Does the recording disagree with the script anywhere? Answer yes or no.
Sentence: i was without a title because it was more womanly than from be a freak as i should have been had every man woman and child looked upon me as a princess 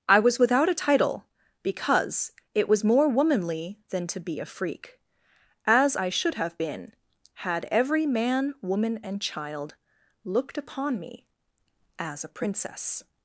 yes